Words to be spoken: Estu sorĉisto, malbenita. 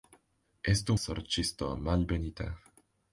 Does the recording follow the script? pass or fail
pass